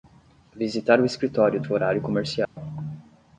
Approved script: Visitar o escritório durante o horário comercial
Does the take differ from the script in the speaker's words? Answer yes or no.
yes